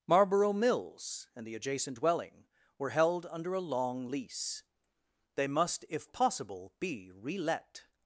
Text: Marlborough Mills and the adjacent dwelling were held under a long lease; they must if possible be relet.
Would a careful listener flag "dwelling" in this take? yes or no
no